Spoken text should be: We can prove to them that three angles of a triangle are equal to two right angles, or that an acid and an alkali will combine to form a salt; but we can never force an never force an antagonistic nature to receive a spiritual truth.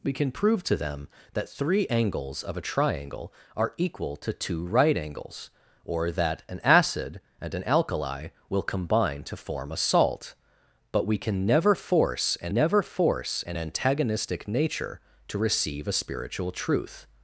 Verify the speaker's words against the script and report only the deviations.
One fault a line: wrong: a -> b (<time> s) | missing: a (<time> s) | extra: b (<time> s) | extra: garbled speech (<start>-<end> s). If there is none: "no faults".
no faults